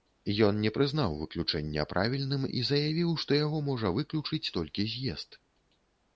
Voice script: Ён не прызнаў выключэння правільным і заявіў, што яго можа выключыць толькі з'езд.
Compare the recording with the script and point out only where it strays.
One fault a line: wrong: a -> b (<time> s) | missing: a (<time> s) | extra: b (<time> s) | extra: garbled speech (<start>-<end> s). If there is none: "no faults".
no faults